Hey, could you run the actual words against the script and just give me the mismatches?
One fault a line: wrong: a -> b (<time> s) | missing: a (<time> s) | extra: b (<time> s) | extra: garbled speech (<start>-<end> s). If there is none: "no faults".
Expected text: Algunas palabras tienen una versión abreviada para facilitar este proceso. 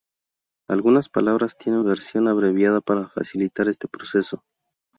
missing: una (1.8 s)